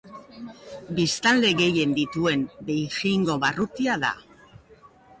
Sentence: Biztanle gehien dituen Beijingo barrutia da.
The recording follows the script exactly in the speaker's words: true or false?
true